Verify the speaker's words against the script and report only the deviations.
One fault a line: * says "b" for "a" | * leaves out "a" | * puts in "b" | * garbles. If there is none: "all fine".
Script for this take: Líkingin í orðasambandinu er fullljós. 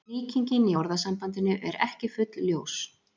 * puts in "ekki"